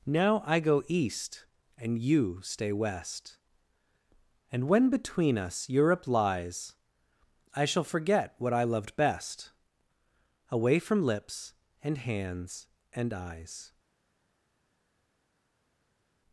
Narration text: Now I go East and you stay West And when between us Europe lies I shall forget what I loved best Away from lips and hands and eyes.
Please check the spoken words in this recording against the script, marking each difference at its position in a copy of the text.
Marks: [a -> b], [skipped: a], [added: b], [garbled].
Now I go East and you stay West And when between us Europe lies I shall forget what I loved best Away from lips and hands and eyes.